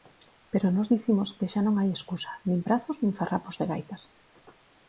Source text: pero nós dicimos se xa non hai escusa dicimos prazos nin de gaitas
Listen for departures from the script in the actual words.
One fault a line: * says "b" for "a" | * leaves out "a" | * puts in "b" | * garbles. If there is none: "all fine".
* says "que" for "se"
* says "nin" for "dicimos"
* puts in "farrapos"